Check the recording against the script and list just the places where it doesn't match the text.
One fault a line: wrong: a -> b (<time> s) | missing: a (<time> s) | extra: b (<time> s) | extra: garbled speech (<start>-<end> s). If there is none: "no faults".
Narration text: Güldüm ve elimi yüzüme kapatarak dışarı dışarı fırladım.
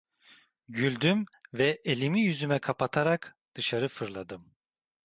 missing: dışarı (3.9 s)